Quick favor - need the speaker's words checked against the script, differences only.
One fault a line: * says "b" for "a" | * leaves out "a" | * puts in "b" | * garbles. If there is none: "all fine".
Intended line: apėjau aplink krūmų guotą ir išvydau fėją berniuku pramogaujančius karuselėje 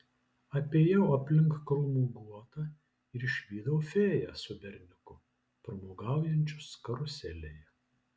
* puts in "su"